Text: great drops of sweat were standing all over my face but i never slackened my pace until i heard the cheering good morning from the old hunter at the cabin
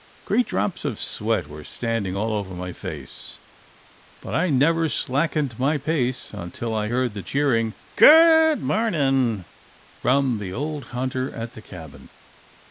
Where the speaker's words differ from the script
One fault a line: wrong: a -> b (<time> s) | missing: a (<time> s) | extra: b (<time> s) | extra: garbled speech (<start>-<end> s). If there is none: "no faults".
no faults